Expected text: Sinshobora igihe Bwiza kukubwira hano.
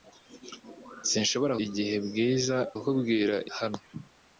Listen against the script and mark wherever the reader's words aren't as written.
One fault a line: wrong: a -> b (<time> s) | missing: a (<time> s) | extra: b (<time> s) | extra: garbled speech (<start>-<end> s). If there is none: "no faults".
no faults